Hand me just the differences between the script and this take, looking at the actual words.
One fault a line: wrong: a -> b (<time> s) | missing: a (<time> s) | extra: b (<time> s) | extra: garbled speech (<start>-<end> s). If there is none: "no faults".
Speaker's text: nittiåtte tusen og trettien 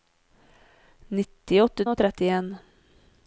missing: tusen (1.9 s)